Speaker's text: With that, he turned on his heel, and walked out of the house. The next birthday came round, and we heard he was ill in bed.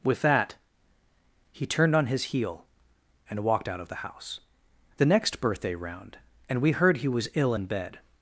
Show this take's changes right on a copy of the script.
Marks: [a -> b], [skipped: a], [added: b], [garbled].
With that, he turned on his heel, and walked out of the house. The next birthday [skipped: came] round, and we heard he was ill in bed.